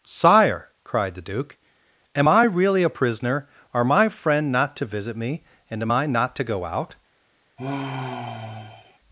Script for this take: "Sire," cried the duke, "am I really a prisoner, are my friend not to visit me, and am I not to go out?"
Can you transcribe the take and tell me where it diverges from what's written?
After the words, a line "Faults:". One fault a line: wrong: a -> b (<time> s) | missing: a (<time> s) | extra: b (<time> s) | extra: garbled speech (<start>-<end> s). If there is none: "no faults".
"Sire," cried the duke, "am I really a prisoner, are my friend not to visit me, and am I not to go out?"
Faults:
no faults